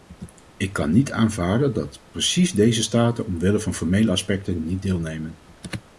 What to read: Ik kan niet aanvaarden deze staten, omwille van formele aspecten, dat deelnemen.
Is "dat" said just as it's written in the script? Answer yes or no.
no